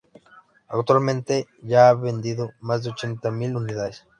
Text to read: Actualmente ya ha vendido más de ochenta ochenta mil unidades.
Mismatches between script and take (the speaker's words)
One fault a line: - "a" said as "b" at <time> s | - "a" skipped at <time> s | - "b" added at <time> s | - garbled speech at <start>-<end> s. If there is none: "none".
- "ochenta" skipped at 3.3 s